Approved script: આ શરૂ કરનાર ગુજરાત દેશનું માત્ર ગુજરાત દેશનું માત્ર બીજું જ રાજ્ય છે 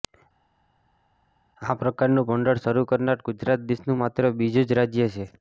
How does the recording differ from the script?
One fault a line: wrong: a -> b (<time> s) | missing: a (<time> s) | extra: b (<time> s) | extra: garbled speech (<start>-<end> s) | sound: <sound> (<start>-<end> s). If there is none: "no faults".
extra: પ્રકારનું ભંડોળ (1.8 s)
missing: ગુજરાત દેશનું માત્ર (4.3 s)